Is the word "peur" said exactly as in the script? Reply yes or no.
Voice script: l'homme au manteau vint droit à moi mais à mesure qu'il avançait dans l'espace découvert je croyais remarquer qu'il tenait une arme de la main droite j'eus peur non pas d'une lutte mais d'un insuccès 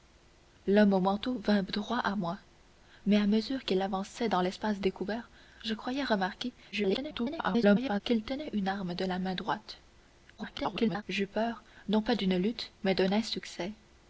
yes